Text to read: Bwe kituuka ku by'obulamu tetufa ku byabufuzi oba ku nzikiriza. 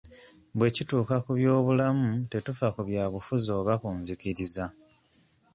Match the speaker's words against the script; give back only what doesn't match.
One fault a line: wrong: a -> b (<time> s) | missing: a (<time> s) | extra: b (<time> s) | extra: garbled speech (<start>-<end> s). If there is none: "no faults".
no faults